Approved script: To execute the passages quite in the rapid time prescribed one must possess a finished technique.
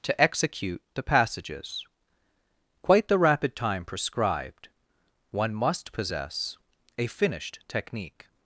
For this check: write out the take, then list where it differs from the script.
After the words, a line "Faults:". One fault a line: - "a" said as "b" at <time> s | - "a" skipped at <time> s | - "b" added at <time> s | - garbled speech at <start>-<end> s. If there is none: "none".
To execute the passages quite the rapid time prescribed one must possess a finished technique.
Faults:
- "in" skipped at 3.1 s